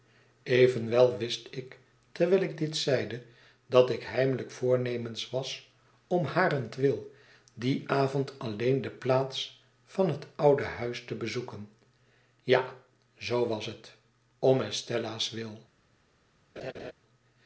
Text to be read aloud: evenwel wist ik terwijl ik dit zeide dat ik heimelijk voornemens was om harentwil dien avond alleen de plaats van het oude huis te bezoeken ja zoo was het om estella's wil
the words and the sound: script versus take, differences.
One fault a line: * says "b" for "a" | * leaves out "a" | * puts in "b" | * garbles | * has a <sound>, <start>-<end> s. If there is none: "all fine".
* has a laugh, 16.6-16.9 s